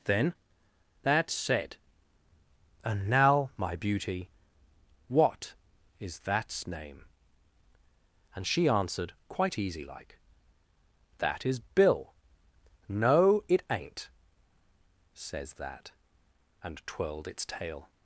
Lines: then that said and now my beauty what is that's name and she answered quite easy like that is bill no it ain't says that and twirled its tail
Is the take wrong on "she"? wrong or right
right